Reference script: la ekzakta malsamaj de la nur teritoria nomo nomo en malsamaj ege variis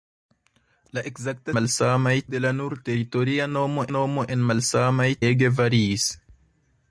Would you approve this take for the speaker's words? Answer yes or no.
yes